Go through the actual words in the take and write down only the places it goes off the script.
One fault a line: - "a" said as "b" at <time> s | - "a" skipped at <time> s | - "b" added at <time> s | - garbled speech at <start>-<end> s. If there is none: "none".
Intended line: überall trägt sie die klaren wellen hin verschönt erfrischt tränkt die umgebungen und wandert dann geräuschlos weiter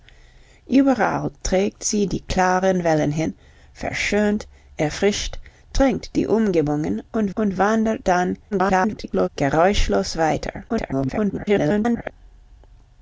- "und" added at 7.3 s
- garbled speech at 8.5-9.3 s
- garbled speech at 10.7-12.1 s